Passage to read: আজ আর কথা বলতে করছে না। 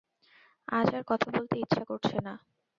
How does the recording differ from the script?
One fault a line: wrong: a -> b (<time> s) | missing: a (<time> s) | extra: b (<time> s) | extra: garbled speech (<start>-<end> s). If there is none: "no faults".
extra: ইচ্ছা (1.6 s)